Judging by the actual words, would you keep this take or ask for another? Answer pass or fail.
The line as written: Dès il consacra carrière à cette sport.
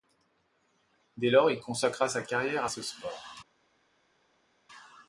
fail